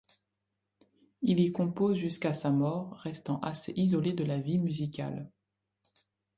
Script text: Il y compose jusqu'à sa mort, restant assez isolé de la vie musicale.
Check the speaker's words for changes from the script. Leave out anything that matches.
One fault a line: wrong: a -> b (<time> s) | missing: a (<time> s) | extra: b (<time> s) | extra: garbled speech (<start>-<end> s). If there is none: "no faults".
no faults